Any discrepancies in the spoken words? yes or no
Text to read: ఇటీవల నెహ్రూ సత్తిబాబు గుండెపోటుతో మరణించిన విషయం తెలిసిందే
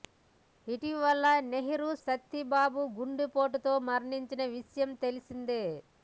no